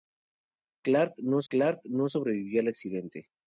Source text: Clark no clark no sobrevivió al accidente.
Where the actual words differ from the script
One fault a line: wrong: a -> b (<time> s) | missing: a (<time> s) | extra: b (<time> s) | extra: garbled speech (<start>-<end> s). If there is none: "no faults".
no faults